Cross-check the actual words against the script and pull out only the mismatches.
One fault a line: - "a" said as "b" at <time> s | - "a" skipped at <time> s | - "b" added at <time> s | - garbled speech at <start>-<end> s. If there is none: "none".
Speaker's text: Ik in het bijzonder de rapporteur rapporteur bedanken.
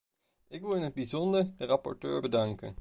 - "wil" added at 0.6 s
- "rapporteur" skipped at 2.2 s